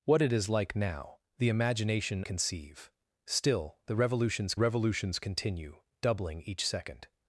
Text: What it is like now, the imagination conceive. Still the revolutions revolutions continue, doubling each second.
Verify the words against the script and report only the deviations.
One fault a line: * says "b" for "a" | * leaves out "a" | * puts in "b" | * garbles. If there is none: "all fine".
all fine